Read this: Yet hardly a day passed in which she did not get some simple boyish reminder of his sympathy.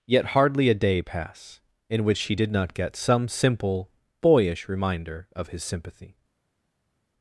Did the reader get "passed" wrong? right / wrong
wrong